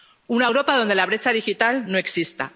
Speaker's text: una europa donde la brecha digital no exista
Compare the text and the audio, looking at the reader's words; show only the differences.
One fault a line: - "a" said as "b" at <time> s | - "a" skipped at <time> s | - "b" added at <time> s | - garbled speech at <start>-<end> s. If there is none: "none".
none